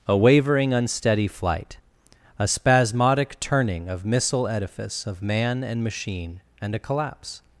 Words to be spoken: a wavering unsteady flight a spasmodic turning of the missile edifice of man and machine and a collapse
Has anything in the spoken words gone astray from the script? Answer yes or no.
yes